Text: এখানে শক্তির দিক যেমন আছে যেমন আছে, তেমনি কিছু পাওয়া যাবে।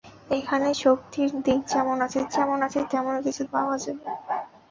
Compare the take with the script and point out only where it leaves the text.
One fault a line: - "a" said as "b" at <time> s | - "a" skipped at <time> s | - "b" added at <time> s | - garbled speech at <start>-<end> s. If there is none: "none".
none